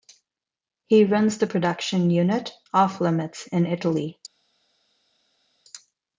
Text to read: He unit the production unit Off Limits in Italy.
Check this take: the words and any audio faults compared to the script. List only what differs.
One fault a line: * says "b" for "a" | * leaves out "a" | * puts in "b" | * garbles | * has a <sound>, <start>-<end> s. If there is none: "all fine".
* says "runs" for "unit"